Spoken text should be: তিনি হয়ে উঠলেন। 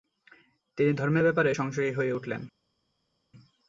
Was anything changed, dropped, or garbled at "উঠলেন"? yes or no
no